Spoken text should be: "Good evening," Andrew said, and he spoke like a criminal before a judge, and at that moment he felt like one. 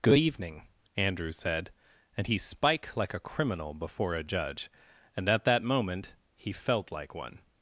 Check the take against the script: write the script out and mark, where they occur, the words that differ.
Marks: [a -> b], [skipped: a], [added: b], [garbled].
"Good evening," Andrew said, and he [spoke -> spike] like a criminal before a judge, and at that moment he felt like one.